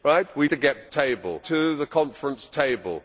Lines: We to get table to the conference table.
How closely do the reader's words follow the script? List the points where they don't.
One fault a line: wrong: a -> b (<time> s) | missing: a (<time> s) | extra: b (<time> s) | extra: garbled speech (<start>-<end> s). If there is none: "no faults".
no faults